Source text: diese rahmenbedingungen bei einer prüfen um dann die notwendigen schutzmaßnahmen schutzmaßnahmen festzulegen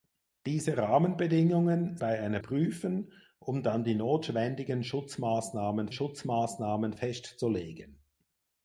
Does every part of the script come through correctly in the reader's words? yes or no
yes